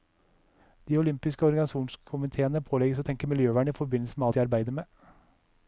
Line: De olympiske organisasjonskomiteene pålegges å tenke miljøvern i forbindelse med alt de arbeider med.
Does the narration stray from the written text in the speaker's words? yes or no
yes